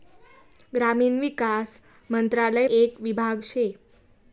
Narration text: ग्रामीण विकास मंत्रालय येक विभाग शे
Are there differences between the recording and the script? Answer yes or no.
no